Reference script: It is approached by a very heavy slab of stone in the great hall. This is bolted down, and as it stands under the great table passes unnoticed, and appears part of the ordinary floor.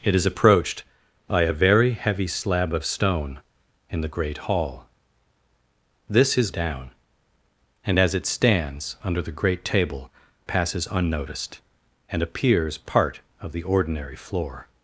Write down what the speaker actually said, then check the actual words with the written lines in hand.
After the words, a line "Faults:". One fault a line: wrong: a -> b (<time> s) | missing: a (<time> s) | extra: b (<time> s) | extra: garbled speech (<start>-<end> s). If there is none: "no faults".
It is approached by a very heavy slab of stone in the great hall. This is down, and as it stands under the great table passes unnoticed, and appears part of the ordinary floor.
Faults:
missing: bolted (6.5 s)